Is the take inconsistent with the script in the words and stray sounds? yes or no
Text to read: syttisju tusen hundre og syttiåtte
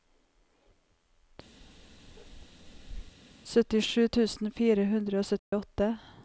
yes